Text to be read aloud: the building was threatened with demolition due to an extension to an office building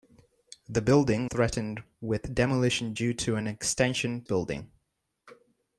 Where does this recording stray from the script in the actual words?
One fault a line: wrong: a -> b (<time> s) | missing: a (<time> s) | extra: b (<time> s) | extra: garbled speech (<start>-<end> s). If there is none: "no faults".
missing: was (1.3 s)
missing: to an office (4.3 s)